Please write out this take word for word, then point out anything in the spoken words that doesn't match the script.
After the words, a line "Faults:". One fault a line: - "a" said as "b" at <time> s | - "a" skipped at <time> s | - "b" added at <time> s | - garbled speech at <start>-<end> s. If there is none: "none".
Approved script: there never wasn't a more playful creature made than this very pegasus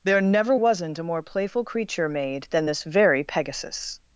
there never wasn't a more playful creature made than this very pegasus
Faults:
none